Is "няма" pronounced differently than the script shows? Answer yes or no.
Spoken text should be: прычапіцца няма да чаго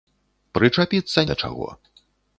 yes